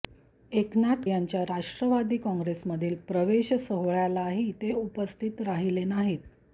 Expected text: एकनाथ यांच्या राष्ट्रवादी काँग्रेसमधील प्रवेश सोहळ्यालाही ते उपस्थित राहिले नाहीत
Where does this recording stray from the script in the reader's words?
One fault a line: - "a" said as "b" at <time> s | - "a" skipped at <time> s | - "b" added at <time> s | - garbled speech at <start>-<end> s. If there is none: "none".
none